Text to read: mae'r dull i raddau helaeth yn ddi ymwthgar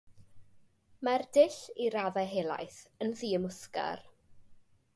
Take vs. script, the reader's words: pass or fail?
pass